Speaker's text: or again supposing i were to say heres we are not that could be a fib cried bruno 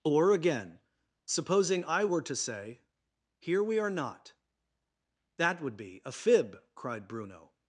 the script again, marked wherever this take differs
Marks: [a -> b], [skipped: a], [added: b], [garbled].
or again supposing i were to say [heres -> here] we are not that [could -> would] be a fib cried bruno